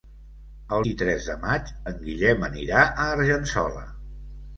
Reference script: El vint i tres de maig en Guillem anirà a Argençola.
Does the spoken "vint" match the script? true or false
false